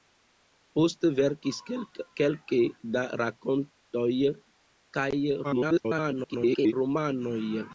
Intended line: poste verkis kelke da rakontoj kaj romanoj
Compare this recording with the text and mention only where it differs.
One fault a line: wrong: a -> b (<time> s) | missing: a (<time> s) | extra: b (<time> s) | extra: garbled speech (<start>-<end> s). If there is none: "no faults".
extra: garbled speech (5.4-6.7 s)